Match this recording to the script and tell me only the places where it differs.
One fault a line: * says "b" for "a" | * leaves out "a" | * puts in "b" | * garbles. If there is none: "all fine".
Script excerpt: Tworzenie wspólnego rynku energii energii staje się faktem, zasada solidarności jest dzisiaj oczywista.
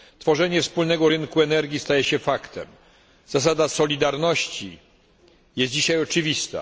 * leaves out "energii"